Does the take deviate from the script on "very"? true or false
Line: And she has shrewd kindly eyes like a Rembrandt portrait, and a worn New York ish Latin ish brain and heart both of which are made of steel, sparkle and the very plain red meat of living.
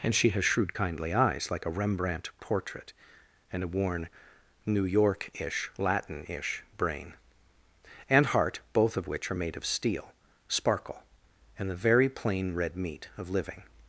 false